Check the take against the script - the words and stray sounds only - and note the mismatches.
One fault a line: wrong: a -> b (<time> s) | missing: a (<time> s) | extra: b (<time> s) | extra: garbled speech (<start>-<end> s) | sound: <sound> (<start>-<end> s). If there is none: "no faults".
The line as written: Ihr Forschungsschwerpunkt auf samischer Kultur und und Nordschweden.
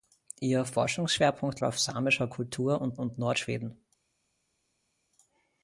no faults